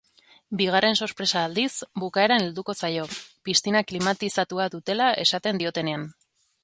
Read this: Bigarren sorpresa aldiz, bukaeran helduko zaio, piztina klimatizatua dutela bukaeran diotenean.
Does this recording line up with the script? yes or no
no